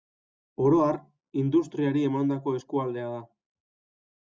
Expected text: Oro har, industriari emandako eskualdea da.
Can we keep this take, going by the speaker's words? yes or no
yes